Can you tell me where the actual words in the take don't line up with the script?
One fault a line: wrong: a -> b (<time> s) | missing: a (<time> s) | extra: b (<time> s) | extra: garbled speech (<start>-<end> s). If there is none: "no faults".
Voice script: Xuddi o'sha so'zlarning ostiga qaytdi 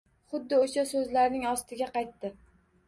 no faults